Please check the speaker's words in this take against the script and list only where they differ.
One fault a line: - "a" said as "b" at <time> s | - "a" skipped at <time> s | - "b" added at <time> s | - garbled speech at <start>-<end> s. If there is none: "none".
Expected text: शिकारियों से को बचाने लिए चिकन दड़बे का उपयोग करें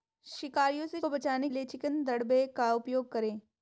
none